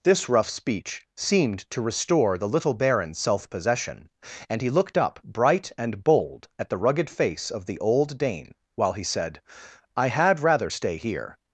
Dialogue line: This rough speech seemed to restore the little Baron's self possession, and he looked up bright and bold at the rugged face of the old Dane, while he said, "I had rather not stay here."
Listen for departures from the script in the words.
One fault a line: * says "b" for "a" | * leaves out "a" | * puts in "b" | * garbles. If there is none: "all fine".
* leaves out "not"